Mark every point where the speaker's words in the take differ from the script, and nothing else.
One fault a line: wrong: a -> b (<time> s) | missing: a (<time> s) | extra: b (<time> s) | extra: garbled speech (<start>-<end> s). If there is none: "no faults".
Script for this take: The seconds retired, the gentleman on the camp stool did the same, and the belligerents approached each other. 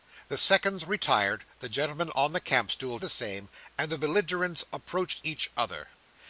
missing: did (3.0 s)